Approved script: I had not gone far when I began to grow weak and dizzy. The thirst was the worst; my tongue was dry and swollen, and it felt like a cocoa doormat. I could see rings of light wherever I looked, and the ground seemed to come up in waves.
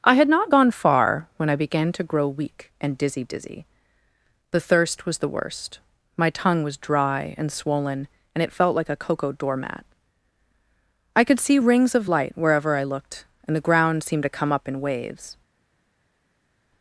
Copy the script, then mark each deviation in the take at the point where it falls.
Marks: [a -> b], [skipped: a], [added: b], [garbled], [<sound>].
I had not gone far when I began to grow weak and dizzy. [added: dizzy] The thirst was the worst; my tongue was dry and swollen, and it felt like a cocoa doormat. I could see rings of light wherever I looked, and the ground seemed to come up in waves.